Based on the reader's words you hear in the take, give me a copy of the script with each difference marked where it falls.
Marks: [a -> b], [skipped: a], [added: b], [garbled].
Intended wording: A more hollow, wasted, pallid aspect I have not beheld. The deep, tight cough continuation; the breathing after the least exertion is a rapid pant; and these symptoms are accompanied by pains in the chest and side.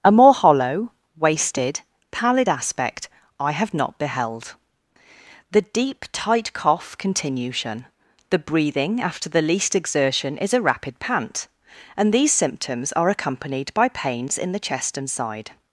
A more hollow, wasted, pallid aspect I have not beheld. The deep, tight cough continuation; the breathing after the least exertion is a rapid pant; and these symptoms are accompanied by pains in the chest and side.